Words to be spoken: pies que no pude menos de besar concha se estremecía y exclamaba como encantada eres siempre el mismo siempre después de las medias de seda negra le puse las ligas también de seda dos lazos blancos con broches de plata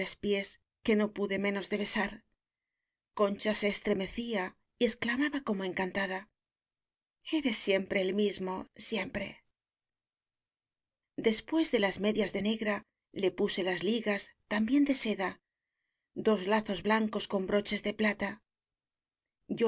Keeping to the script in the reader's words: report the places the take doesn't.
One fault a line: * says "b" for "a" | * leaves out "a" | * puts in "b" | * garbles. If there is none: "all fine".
* leaves out "seda"